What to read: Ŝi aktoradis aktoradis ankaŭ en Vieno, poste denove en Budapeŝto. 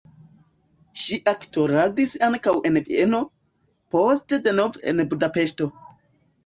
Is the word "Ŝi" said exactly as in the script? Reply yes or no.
yes